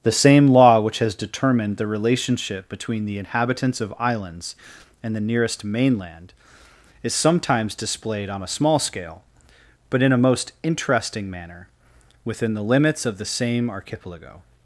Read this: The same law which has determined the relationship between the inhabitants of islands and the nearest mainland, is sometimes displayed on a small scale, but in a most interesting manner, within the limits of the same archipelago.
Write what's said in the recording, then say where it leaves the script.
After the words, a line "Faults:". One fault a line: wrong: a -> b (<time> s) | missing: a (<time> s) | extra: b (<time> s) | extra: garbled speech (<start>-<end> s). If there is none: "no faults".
The same law which has determined the relationship between the inhabitants of islands and the nearest mainland, is sometimes displayed on a small scale, but in a most interesting manner, within the limits of the same archipelago.
Faults:
no faults